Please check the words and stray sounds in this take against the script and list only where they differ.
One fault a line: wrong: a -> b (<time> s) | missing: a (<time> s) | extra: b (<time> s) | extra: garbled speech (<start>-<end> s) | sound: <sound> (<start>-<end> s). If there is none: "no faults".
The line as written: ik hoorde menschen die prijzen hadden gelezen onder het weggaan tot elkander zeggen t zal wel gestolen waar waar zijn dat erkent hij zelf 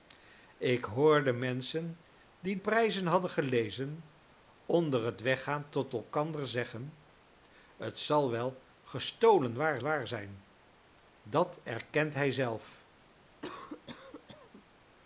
sound: cough (13.4-14.7 s)